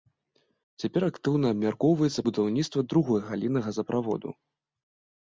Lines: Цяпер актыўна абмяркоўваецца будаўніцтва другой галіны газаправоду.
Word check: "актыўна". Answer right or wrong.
right